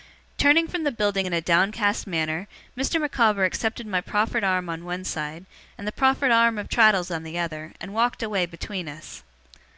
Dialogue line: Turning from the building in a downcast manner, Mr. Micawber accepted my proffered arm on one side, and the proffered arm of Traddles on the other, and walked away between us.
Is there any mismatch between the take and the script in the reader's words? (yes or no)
no